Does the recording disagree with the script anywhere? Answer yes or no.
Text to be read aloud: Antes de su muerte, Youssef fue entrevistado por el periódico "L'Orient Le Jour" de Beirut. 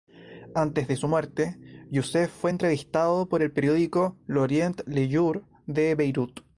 no